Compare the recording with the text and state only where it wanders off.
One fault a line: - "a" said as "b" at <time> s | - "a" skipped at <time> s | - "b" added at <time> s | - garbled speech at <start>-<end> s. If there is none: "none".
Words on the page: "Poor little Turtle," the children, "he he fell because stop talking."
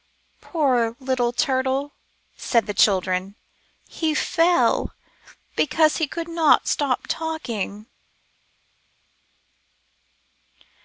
- "said" added at 2.4 s
- "fell because" added at 4.2 s
- "fell because" said as "could not" at 6.1 s